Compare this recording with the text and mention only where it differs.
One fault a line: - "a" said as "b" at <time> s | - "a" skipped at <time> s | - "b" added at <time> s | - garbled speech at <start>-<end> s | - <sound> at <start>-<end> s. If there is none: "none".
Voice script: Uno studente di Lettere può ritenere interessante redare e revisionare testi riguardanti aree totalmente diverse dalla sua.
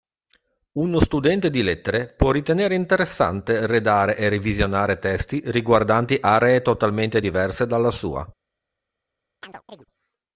- chirp at 9.4-9.9 s